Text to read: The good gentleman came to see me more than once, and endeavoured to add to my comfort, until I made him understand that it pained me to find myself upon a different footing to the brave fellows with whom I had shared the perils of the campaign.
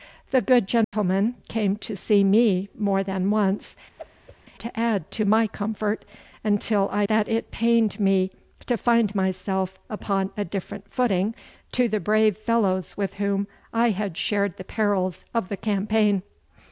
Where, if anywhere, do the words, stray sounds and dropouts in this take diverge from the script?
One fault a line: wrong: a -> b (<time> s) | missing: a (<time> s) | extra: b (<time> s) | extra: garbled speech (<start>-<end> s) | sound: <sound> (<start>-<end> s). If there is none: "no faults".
sound: dropout (0.8-0.9 s)
missing: and endeavoured (3.8 s)
sound: whoosh (4.0-4.4 s)
missing: made him understand (7.1 s)